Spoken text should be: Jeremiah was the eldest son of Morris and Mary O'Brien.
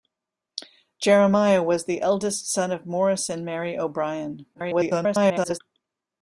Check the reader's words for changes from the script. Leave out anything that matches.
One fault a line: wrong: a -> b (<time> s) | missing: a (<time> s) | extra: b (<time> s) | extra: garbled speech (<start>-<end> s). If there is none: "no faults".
extra: garbled speech (4.5-5.6 s)